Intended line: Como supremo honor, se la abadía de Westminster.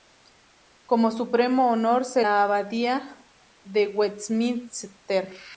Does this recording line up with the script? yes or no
yes